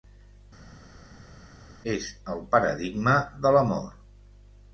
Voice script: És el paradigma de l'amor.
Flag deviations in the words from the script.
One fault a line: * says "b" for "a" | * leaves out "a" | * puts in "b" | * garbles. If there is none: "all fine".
all fine